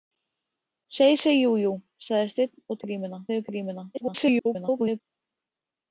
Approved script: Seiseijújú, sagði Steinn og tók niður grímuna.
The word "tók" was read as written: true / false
false